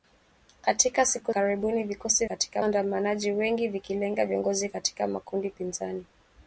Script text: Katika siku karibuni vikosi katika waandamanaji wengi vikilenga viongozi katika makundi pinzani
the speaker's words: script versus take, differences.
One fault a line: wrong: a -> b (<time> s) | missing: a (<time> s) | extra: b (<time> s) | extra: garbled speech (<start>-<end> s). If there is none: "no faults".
no faults